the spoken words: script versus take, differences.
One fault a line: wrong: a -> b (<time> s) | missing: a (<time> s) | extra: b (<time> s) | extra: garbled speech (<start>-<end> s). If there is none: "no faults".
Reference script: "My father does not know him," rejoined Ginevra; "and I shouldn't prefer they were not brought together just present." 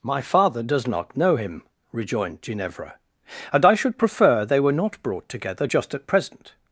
wrong: shouldn't -> should (3.7 s)
extra: at (5.9 s)